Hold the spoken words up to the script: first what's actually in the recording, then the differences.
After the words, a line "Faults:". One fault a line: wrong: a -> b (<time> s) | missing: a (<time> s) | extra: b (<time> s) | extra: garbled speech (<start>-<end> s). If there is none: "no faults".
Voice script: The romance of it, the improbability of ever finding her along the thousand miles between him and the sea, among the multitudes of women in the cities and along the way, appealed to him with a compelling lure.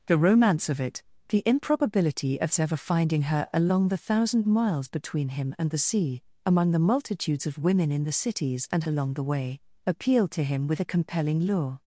The romance of it, the improbability of ever finding her along the thousand miles between him and the sea, among the multitudes of women in the cities and along the way, appealed to him with a compelling lure.
Faults:
no faults